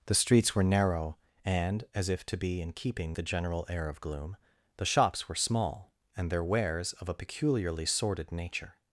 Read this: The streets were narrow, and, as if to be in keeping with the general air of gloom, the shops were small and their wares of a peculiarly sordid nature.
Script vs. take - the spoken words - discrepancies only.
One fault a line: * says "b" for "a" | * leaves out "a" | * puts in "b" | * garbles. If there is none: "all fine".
* leaves out "with"